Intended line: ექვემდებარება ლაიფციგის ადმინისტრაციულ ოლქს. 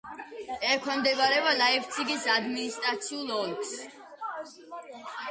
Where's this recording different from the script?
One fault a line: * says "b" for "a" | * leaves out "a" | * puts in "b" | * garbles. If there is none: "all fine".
all fine